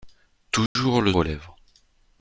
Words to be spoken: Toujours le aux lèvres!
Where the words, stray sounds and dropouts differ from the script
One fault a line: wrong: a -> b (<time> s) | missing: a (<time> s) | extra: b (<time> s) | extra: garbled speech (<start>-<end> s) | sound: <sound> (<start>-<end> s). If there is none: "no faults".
sound: dropout (0.7-0.8 s)